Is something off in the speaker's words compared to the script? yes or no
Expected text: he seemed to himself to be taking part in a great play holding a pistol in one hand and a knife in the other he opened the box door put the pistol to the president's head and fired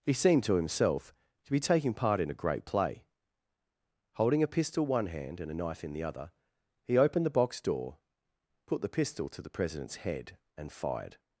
yes